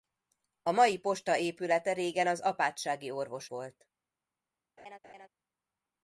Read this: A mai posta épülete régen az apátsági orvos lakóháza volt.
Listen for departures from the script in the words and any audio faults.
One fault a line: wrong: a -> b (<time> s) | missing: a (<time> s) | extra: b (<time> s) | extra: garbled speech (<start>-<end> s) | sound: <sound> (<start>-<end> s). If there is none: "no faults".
missing: lakóháza (3.5 s)
sound: laugh (4.8-5.3 s)